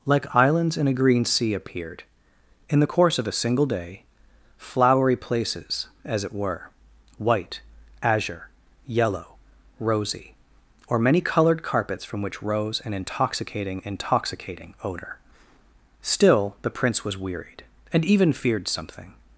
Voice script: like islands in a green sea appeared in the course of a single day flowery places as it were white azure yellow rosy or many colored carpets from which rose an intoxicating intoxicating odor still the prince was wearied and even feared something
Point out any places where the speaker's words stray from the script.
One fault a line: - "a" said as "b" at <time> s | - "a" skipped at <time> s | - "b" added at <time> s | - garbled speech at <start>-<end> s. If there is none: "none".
none